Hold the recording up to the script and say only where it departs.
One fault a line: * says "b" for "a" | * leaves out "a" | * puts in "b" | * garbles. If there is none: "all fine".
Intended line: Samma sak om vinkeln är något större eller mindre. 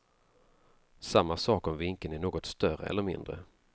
all fine